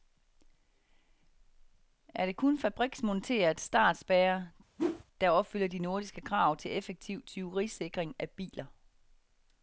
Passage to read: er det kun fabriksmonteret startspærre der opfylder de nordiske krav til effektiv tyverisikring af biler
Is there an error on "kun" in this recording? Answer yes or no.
no